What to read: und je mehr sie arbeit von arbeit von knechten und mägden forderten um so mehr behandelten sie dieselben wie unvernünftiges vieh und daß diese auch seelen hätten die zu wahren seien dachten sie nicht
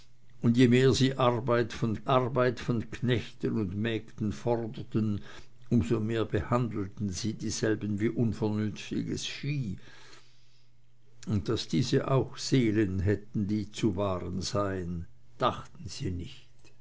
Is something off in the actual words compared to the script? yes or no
no